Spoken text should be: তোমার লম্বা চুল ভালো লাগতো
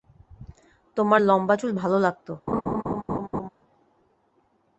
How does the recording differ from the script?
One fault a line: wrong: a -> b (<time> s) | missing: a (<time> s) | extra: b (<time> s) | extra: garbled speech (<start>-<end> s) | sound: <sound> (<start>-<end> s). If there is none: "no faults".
sound: laugh (2.5-3.5 s)